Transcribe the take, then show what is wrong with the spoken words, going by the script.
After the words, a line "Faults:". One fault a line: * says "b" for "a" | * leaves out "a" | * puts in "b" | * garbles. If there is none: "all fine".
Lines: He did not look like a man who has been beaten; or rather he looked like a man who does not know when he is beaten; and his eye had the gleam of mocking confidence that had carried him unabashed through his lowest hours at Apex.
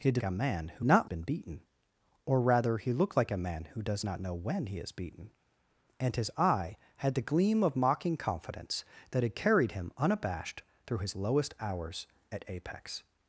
He did a man who not been beaten; or rather he looked like a man who does not know when he is beaten; and his eye had the gleam of mocking confidence that had carried him unabashed through his lowest hours at Apex.
Faults:
* leaves out "not look like"
* says "not" for "has"